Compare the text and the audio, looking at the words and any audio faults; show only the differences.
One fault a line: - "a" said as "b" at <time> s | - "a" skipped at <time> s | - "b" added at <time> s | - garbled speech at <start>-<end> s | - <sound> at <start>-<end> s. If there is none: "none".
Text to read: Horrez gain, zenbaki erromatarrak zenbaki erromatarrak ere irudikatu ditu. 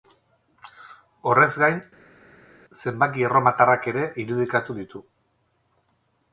- "zenbaki erromatarrak" skipped at 3.9 s